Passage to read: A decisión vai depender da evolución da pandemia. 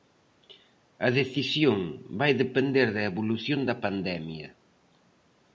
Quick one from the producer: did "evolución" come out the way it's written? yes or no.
yes